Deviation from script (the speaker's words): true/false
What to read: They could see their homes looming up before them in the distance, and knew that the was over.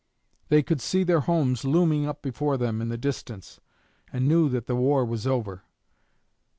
true